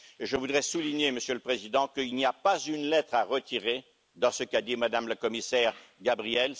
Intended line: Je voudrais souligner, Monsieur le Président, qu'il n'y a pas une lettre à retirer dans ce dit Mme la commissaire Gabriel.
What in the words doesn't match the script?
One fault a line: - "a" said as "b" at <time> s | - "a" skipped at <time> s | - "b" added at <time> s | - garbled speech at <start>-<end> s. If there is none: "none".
- "qu'a" added at 4.4 s